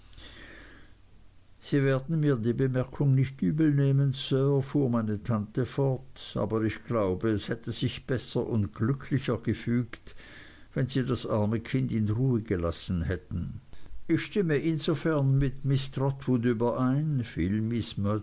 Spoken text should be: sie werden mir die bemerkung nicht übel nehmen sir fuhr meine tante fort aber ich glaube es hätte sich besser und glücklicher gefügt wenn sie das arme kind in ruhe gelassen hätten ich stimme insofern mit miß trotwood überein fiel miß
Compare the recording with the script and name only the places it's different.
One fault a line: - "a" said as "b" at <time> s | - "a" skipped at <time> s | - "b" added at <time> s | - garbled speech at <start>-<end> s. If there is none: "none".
none